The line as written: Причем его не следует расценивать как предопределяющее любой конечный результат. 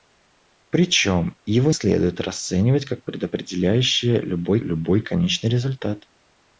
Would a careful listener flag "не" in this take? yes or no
yes